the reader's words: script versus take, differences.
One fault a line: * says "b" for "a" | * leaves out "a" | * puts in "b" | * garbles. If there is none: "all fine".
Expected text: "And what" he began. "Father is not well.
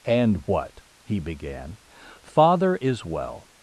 * leaves out "not"